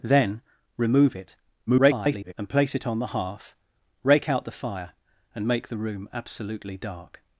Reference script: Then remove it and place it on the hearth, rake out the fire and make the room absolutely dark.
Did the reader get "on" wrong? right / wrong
right